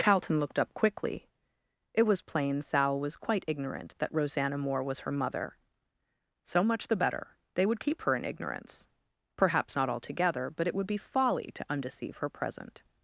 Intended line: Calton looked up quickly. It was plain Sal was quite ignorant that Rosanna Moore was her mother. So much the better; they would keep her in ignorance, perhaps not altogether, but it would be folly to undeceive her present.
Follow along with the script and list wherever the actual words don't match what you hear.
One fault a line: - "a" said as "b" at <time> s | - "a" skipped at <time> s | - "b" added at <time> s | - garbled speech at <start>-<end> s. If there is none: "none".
none